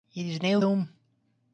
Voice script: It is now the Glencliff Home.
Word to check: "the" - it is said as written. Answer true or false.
false